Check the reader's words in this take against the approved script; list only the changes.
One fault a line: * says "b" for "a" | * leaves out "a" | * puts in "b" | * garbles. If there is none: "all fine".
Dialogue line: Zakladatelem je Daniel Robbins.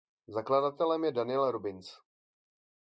all fine